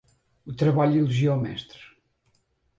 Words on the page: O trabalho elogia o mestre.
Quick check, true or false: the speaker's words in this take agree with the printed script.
true